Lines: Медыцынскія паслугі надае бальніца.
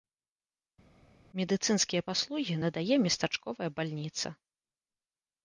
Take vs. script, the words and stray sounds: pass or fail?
fail